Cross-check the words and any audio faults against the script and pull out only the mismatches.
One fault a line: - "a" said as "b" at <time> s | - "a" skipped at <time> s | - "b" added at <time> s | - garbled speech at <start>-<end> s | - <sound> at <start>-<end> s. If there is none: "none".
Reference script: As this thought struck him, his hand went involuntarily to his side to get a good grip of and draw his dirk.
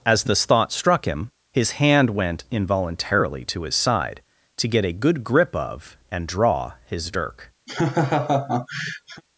- laugh at 7.7-9.2 s